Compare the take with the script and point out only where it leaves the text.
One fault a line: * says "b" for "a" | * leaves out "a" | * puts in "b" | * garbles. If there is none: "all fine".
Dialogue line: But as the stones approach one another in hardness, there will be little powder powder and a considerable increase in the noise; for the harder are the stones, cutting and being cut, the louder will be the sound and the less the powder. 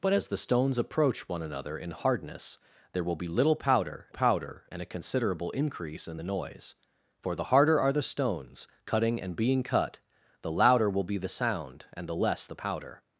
all fine